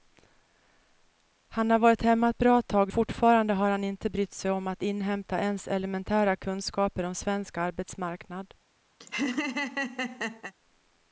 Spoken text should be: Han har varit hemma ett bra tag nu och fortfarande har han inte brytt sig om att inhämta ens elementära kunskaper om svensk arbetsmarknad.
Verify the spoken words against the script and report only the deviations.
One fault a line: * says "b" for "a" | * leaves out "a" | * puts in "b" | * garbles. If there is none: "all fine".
* leaves out "nu och"